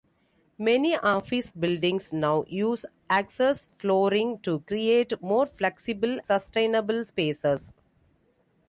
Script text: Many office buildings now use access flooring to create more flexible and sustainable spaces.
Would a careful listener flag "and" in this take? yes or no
yes